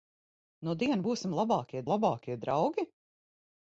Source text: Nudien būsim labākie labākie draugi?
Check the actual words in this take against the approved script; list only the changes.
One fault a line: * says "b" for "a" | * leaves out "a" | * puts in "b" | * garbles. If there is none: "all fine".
all fine